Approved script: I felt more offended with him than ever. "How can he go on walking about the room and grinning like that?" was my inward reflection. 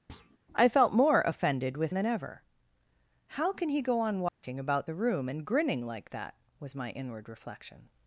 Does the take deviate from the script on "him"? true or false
true